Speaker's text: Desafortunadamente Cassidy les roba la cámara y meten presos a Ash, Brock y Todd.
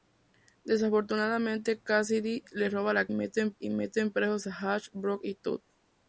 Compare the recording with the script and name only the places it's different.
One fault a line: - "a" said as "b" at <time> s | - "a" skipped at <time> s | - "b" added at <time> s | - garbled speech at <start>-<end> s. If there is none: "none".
- "cámara" said as "meten" at 3.1 s